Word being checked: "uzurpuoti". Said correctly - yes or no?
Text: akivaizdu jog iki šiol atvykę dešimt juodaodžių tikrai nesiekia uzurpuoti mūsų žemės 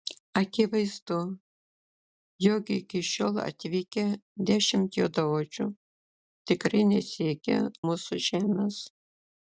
no